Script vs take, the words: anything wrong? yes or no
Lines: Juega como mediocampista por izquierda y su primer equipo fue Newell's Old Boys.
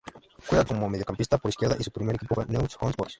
no